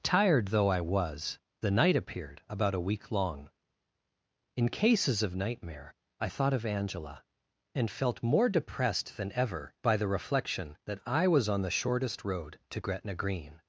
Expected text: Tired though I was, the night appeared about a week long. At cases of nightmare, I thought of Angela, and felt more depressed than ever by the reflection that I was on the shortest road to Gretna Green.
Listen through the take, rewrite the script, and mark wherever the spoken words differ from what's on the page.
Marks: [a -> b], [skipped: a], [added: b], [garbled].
Tired though I was, the night appeared about a week long. [At -> In] cases of nightmare, I thought of Angela, and felt more depressed than ever by the reflection that I was on the shortest road to Gretna Green.